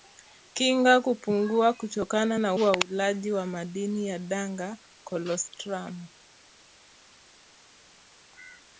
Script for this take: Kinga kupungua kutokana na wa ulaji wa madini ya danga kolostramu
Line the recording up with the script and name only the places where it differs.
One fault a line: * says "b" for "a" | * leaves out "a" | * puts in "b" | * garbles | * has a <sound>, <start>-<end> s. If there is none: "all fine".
all fine